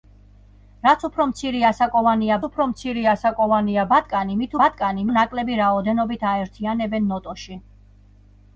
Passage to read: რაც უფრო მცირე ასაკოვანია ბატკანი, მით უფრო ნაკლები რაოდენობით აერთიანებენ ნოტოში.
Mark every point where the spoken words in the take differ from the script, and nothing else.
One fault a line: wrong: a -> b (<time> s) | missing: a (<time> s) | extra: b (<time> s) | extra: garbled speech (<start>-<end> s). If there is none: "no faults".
extra: უფრო მცირე ასაკოვანია (2.5 s)
wrong: უფრო -> ბატკანი (4.6 s)